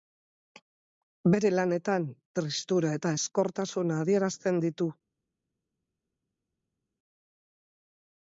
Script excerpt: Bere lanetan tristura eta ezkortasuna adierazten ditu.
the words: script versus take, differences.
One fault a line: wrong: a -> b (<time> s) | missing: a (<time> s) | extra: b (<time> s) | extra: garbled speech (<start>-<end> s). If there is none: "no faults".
no faults